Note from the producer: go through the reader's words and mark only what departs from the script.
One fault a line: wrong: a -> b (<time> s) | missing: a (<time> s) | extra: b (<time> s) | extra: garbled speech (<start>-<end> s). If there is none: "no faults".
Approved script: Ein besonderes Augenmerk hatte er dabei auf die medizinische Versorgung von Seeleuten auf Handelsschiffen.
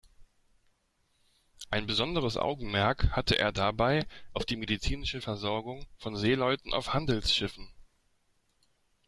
no faults